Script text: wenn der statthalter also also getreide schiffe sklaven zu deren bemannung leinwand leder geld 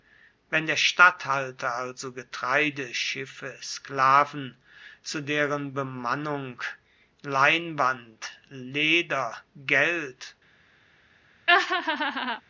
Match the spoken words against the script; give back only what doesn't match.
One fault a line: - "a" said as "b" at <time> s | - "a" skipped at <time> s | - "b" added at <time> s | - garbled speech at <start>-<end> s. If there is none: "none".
- "also" skipped at 2.1 s